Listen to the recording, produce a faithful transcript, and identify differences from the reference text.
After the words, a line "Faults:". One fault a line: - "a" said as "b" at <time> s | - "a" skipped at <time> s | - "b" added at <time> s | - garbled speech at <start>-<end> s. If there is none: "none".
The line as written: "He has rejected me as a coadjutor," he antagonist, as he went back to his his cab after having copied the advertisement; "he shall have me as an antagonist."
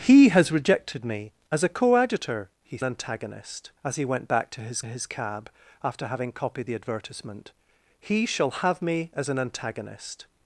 "He has rejected me as a coadjutor," he antagonist, as he went back to his his cab after having copied the advertisement; "he shall have me as an antagonist."
Faults:
none